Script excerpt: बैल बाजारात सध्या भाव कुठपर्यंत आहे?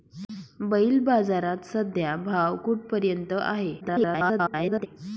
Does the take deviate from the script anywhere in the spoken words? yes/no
yes